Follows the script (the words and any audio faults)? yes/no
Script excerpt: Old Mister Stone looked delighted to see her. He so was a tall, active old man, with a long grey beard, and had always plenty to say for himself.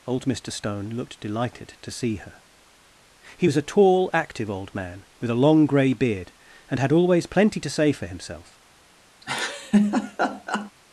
no